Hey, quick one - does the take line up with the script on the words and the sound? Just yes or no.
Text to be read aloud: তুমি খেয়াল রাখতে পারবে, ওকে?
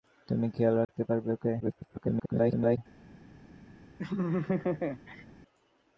no